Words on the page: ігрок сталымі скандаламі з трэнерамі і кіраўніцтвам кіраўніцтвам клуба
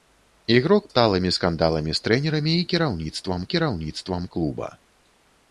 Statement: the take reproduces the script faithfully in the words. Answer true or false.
true